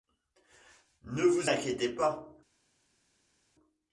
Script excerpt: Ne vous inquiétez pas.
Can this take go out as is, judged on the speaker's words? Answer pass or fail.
pass